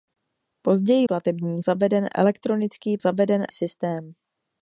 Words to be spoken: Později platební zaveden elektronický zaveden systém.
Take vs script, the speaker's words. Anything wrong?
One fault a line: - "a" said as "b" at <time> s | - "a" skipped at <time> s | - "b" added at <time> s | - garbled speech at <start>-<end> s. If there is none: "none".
none